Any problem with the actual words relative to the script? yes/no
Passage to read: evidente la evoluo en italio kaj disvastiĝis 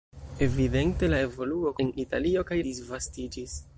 no